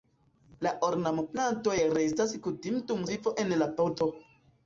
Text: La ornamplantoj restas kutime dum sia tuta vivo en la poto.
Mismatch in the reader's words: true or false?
true